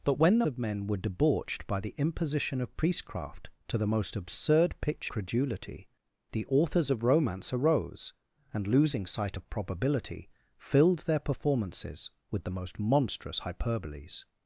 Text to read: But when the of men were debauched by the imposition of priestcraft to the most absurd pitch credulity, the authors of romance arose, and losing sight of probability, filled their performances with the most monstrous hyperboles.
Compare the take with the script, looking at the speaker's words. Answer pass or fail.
pass